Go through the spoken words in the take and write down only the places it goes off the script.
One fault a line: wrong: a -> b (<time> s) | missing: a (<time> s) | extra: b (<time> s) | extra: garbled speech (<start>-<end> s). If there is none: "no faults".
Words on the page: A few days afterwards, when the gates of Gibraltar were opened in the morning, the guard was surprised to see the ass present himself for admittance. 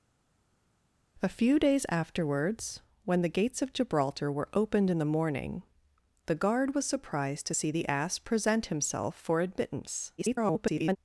extra: garbled speech (10.2-11.0 s)